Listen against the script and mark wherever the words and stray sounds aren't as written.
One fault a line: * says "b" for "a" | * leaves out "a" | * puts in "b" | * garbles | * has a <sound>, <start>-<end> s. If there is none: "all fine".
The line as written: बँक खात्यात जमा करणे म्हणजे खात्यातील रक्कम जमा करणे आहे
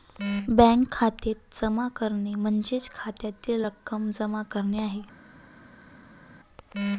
all fine